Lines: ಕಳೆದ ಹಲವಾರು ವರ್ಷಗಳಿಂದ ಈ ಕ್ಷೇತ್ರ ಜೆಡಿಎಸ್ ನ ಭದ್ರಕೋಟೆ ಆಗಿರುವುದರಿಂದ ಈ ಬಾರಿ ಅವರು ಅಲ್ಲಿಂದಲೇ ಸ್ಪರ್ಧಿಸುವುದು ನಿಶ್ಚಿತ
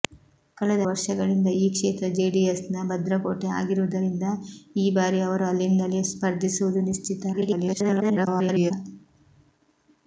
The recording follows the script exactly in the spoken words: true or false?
false